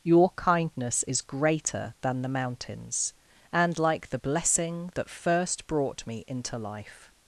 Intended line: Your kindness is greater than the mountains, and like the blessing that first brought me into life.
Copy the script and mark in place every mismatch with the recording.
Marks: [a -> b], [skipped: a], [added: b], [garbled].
Your kindness is greater than the mountains, and like the blessing that first brought me into life.